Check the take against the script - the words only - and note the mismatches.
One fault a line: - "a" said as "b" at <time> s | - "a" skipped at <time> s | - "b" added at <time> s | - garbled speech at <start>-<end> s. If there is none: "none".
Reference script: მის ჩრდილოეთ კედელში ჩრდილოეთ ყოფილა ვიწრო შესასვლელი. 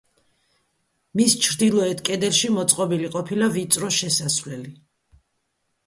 - "ჩრდილოეთ" said as "მოწყობილი" at 2.6 s